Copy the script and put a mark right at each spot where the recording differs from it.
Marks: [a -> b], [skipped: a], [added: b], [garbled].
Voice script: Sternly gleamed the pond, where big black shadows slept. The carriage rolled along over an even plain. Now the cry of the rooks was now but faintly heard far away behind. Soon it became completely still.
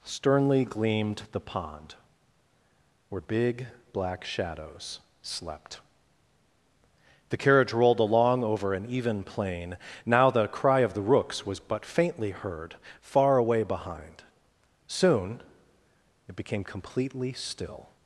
Sternly gleamed the pond, where big black shadows slept. The carriage rolled along over an even plain. Now the cry of the rooks was [skipped: now] but faintly heard far away behind. Soon it became completely still.